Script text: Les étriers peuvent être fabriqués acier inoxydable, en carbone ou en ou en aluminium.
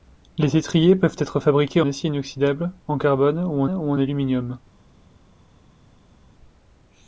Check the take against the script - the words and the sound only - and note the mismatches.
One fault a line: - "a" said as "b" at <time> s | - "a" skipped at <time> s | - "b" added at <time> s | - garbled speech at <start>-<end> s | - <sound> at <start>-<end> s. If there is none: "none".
none